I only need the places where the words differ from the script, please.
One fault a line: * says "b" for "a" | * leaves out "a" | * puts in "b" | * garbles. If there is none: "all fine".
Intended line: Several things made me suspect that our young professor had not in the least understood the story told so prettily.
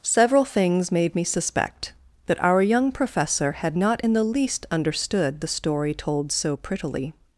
all fine